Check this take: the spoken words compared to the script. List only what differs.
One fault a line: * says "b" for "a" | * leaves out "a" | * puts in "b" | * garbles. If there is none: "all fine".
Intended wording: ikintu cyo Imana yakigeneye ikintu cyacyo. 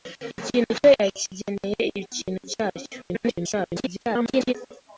* leaves out "Imana"
* garbles